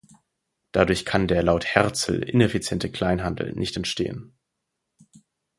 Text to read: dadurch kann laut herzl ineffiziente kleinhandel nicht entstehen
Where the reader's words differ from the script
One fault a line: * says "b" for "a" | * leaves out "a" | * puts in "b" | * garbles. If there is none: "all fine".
* puts in "der"